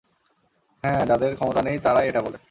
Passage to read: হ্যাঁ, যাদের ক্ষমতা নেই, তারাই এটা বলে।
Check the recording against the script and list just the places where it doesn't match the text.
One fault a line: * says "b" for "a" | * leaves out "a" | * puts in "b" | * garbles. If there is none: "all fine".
all fine